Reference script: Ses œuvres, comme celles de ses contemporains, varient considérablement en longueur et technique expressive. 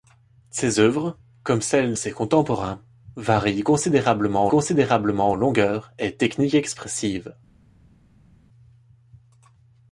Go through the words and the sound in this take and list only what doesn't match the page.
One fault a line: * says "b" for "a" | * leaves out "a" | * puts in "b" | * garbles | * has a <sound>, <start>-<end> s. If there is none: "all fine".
* leaves out "de"
* puts in "considérablement"